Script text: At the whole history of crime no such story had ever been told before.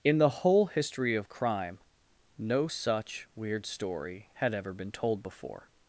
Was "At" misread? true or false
true